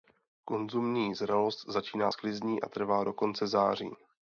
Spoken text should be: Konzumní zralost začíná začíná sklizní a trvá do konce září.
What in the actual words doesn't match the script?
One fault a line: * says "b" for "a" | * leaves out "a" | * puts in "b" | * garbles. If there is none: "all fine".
* leaves out "začíná"